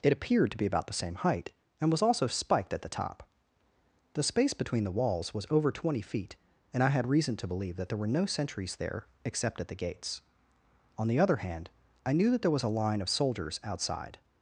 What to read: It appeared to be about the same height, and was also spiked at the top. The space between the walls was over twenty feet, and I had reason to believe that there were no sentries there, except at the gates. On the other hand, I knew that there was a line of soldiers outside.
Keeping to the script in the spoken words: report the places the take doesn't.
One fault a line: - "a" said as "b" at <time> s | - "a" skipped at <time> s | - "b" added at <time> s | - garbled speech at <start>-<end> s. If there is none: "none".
none